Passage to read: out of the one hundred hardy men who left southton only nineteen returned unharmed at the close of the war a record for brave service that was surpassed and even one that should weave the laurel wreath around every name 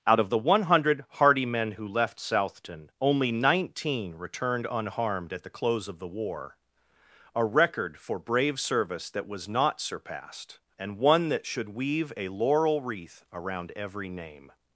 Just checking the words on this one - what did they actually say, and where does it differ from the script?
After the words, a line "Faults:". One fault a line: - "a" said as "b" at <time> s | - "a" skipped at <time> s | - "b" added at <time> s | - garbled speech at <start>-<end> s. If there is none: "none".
out of the one hundred hardy men who left southton only nineteen returned unharmed at the close of the war a record for brave service that was not surpassed and one that should weave a laurel wreath around every name
Faults:
- "not" added at 9.5 s
- "even" skipped at 11.0 s
- "the" said as "a" at 12.2 s